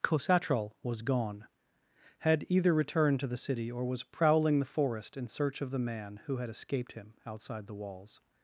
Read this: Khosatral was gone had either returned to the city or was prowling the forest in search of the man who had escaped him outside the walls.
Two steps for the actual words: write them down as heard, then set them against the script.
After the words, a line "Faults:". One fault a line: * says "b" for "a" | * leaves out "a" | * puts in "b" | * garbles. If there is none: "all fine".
Khosatral was gone had either returned to the city or was prowling the forest in search of the man who had escaped him outside the walls.
Faults:
all fine